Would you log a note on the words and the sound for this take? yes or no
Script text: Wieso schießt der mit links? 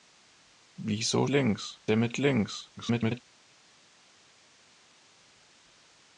yes